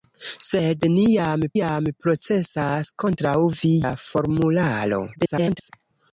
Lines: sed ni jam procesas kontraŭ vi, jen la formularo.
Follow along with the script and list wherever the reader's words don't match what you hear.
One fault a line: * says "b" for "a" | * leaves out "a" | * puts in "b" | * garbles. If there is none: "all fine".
* puts in "jam"
* leaves out "jen"
* garbles